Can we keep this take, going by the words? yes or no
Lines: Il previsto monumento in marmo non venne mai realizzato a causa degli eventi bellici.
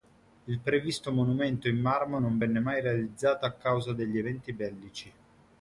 yes